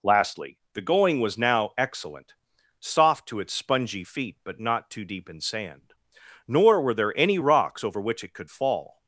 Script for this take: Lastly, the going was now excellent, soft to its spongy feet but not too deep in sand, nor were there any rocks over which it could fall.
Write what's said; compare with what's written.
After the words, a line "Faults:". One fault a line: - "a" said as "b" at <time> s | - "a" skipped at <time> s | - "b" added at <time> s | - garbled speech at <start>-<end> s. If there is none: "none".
Lastly, the going was now excellent, soft to its spongy feet but not too deep in sand, nor were there any rocks over which it could fall.
Faults:
none